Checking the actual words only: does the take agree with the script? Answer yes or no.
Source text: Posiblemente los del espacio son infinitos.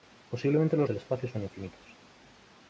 yes